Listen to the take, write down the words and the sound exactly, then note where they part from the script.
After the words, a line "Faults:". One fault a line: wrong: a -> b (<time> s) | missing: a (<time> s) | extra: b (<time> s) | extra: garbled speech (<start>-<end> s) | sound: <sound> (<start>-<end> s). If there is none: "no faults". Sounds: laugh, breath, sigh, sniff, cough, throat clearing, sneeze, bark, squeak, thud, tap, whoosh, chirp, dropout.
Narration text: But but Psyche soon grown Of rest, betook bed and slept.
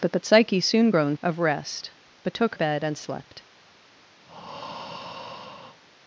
But but Psyche soon grown Of rest, betook bed and slept.
Faults:
sound: breath (4.3-5.8 s)